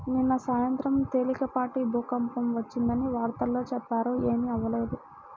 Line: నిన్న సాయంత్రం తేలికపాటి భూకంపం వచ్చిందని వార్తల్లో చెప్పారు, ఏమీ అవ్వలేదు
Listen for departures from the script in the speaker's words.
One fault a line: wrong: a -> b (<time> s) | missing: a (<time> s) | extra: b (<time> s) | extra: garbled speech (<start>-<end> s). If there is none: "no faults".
no faults